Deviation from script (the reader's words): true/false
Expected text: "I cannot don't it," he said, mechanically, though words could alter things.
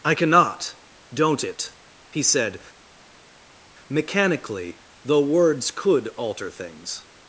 false